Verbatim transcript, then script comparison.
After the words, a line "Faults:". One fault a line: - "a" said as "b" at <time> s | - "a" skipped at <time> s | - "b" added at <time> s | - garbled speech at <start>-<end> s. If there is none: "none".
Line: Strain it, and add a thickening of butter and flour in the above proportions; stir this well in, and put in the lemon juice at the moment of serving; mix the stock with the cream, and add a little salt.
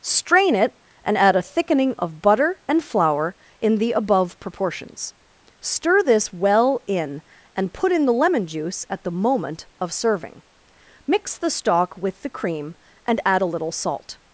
Strain it, and add a thickening of butter and flour in the above proportions; stir this well in, and put in the lemon juice at the moment of serving; mix the stock with the cream, and add a little salt.
Faults:
none